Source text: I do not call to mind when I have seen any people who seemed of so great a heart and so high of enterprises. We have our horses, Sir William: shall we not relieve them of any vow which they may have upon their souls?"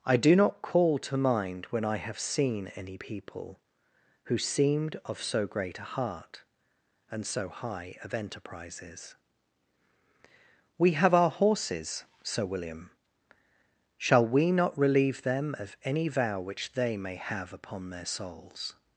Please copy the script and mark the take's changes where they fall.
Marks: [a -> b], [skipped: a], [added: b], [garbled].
I do not call to mind when I have seen any people who seemed of so great a heart and so high of enterprises. We have our horses, Sir William: shall we not relieve them of any vow which they may have upon their souls?"